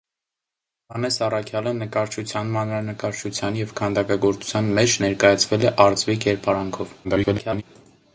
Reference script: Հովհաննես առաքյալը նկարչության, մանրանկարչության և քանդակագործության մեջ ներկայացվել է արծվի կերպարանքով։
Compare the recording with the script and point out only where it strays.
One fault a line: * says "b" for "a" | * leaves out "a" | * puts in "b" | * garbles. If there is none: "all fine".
* garbles